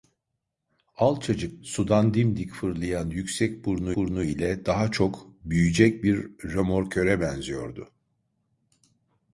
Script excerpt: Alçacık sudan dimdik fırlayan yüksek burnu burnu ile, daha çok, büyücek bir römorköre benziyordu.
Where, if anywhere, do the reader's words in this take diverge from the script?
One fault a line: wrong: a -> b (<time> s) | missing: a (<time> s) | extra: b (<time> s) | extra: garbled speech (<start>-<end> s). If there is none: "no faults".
no faults